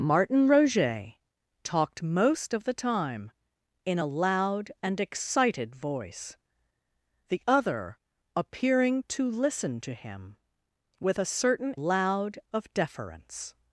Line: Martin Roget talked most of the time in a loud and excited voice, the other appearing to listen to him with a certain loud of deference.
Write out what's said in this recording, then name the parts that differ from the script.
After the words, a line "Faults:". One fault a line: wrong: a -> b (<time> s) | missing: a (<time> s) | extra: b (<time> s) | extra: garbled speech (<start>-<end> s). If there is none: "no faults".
Martin Roget talked most of the time in a loud and excited voice, the other appearing to listen to him with a certain loud of deference.
Faults:
no faults